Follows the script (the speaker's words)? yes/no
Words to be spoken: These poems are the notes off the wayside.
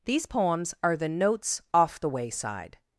yes